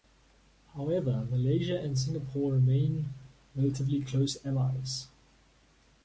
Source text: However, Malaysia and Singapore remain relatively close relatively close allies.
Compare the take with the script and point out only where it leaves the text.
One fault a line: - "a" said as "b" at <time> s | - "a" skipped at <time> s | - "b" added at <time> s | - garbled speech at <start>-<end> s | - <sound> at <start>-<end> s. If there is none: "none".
- "relatively close" skipped at 4.4 s